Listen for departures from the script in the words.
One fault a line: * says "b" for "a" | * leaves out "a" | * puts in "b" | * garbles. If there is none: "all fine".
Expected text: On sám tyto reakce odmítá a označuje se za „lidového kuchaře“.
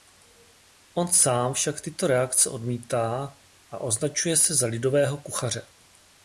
* puts in "však"